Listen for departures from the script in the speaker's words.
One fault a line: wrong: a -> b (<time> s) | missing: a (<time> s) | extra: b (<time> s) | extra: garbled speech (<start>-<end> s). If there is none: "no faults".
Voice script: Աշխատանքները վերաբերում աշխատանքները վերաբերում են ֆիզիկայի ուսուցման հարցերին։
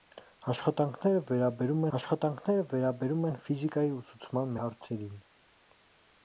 no faults